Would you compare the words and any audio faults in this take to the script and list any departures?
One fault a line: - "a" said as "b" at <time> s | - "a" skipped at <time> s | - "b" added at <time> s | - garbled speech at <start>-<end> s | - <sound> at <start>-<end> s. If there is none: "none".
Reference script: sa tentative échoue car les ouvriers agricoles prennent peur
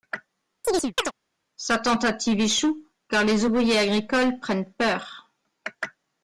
- chirp at 0.6-1.1 s